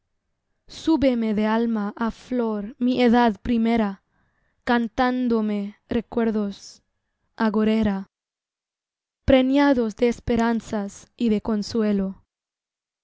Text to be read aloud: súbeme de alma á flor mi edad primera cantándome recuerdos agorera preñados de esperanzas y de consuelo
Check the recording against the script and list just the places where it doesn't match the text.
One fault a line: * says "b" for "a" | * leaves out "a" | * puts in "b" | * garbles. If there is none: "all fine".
all fine